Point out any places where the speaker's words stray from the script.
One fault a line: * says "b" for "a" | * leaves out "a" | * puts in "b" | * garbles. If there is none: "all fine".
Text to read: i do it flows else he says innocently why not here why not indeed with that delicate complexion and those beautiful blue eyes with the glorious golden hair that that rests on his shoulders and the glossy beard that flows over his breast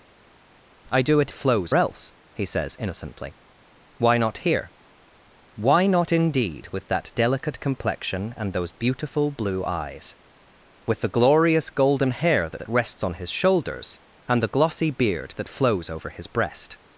all fine